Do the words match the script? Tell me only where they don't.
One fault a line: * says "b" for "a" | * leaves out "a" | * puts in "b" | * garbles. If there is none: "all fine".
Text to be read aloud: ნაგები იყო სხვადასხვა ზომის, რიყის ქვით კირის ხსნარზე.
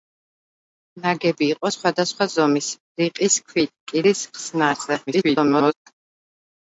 * garbles